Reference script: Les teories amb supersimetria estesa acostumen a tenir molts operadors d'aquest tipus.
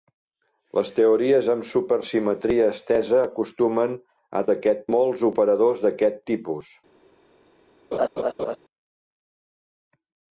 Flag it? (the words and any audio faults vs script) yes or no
yes